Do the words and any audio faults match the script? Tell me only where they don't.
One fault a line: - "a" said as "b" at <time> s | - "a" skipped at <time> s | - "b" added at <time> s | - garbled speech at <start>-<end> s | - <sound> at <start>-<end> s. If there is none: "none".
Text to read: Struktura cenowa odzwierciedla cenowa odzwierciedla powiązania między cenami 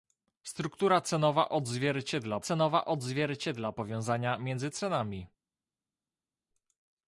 none